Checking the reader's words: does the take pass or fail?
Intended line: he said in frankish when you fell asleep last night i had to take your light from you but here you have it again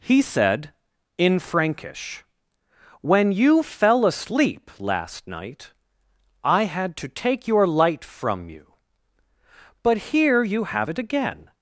pass